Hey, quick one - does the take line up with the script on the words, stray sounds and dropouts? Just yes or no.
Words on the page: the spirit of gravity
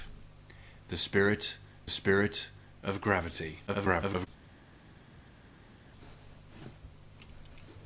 no